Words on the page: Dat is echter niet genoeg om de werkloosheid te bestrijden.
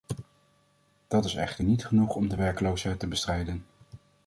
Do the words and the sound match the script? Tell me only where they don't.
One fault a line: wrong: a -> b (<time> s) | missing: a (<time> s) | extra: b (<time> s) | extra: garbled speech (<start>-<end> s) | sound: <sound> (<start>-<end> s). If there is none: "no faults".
no faults